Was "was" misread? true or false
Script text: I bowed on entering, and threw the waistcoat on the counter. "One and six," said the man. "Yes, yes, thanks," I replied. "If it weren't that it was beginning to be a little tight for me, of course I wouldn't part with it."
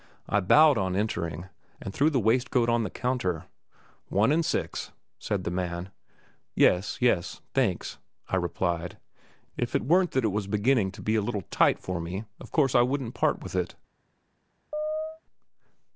false